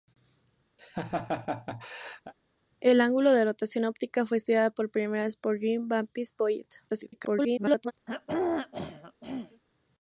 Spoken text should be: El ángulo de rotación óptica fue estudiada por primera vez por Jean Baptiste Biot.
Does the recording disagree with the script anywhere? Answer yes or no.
yes